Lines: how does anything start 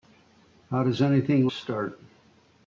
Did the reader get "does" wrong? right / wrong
right